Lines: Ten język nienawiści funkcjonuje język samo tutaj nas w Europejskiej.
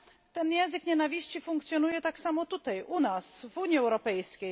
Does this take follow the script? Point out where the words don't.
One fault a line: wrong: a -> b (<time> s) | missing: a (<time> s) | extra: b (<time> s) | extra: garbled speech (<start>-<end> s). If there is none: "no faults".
wrong: język -> tak (2.0 s)
extra: u (2.8 s)
extra: Unii (3.6 s)